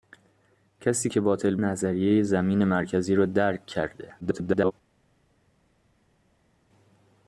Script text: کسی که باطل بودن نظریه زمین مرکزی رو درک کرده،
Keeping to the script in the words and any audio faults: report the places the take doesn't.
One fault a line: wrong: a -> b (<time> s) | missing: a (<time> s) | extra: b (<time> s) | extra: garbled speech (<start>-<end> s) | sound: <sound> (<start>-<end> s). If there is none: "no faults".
missing: بودن (1.6 s)
extra: garbled speech (4.2-4.7 s)